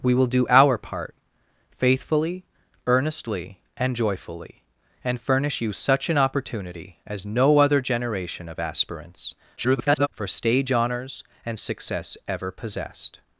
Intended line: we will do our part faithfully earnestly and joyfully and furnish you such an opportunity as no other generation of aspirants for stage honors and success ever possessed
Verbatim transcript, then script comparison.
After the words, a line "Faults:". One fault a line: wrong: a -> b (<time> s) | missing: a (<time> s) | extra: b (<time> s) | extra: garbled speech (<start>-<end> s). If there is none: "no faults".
we will do our part faithfully earnestly and joyfully and furnish you such an opportunity as no other generation of aspirants [garbled] for stage honors and success ever possessed
Faults:
extra: garbled speech (9.6-10.1 s)